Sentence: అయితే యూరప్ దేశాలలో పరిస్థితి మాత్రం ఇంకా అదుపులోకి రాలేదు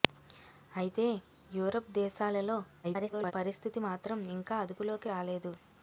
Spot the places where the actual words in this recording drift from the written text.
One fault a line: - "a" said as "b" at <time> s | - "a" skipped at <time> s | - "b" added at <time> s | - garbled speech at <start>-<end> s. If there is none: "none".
- garbled speech at 2.8-3.3 s